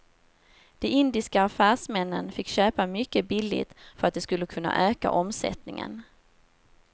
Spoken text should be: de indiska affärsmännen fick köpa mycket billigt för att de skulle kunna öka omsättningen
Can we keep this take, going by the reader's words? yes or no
yes